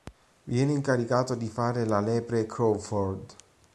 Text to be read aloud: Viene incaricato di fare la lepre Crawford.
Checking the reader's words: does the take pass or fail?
pass